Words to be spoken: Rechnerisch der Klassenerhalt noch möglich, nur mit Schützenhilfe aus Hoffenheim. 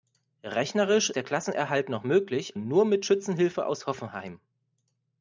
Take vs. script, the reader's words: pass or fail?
pass